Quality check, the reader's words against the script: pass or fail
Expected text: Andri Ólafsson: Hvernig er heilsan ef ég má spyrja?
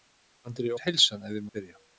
fail